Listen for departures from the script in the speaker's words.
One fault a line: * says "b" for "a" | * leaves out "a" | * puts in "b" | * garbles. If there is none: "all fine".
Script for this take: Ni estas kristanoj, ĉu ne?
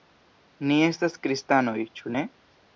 all fine